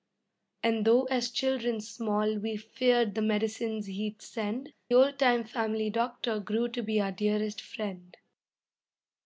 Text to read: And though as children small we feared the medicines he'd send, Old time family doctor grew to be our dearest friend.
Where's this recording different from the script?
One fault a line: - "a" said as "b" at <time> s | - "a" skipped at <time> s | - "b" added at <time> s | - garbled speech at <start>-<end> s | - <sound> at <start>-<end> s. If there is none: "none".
none